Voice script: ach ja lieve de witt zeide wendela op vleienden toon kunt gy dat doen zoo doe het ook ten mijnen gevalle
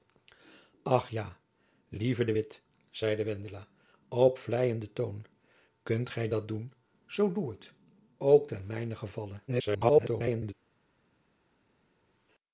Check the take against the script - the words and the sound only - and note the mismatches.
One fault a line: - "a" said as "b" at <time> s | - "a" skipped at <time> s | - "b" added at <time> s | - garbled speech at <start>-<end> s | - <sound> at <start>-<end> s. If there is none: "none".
- garbled speech at 9.5-10.5 s